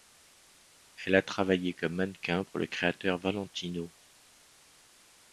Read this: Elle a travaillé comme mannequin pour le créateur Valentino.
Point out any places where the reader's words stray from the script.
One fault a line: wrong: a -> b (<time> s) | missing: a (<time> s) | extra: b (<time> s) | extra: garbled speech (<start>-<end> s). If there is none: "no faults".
no faults